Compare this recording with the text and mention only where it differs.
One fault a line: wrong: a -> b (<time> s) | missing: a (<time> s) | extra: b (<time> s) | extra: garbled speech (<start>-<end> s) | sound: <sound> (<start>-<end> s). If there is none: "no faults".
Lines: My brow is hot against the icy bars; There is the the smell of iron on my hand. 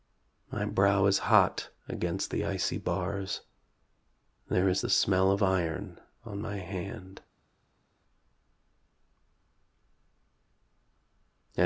missing: the (4.9 s)